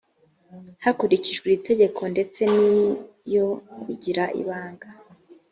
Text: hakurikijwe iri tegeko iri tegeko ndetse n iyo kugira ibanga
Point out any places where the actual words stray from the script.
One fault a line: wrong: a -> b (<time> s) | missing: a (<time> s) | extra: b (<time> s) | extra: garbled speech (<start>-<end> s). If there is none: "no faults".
missing: iri tegeko (2.0 s)